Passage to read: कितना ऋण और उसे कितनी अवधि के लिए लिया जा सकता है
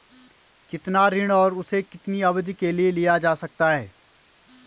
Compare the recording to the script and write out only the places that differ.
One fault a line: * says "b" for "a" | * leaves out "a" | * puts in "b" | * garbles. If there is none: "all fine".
all fine